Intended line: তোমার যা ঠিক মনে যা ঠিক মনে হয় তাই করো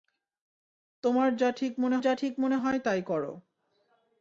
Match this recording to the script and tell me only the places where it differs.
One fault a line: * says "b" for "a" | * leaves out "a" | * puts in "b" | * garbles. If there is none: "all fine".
all fine